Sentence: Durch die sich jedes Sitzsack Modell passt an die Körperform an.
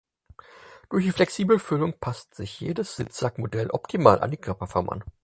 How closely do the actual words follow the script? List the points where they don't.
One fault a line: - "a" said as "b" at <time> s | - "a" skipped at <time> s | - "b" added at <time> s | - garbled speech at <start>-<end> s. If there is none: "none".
- "flexible Füllung passt" added at 1.1 s
- "passt" said as "optimal" at 3.7 s